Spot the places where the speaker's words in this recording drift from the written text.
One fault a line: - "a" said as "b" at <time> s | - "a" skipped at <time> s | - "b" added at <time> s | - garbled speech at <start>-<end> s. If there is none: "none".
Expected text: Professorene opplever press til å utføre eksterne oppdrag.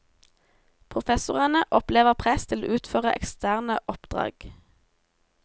none